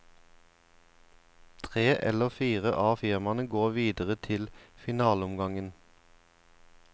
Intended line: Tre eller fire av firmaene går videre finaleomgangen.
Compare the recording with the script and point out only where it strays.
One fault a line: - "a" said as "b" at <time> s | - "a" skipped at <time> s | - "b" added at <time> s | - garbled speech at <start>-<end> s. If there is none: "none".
- "til" added at 4.3 s